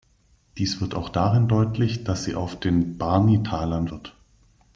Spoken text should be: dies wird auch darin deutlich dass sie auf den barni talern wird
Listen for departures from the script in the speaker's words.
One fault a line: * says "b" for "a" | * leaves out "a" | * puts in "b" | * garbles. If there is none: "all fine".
all fine